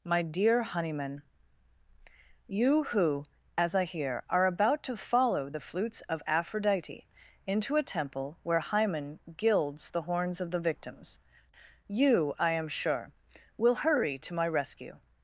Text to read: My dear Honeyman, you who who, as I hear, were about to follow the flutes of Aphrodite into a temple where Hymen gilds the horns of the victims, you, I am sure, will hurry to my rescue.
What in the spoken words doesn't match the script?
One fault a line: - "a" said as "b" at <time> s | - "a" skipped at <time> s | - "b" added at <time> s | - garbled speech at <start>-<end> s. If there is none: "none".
- "who" skipped at 3.2 s
- "were" said as "are" at 4.3 s